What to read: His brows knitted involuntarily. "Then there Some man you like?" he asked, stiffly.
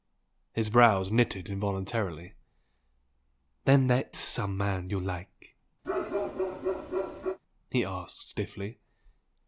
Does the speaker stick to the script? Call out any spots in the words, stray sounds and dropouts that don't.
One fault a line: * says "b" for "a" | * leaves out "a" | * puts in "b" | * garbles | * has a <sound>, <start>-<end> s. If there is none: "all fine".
* has a bark, 5.8-7.4 s